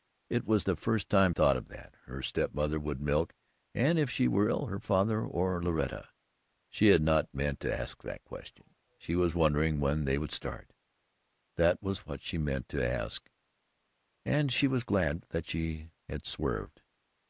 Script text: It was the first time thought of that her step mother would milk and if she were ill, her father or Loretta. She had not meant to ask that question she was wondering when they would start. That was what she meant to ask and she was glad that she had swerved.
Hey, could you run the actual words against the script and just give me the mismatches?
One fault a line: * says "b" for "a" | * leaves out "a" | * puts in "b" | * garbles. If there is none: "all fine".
all fine